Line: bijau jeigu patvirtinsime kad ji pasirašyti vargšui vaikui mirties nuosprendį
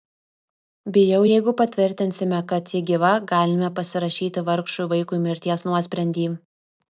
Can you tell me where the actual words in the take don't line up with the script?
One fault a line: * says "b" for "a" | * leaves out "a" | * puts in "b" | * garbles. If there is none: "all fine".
* puts in "gyva galime"